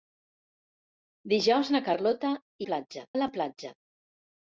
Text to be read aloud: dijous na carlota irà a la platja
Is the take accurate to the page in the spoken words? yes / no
no